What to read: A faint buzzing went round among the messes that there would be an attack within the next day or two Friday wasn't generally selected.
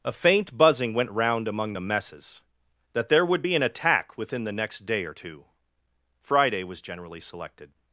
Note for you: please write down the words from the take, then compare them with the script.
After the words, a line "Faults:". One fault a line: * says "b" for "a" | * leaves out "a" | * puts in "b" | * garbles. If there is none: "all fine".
A faint buzzing went round among the messes that there would be an attack within the next day or two Friday was generally selected.
Faults:
* says "was" for "wasn't"